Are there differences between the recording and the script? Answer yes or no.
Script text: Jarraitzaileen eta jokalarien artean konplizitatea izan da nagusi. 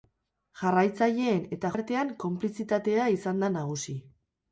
yes